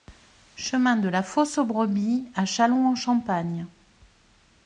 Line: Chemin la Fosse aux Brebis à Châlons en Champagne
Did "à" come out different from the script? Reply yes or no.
no